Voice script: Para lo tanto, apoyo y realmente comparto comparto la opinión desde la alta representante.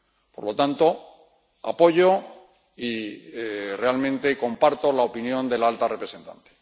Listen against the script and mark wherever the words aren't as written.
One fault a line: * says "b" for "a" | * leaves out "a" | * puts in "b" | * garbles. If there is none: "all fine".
* says "Por" for "Para"
* leaves out "comparto"
* says "de" for "desde"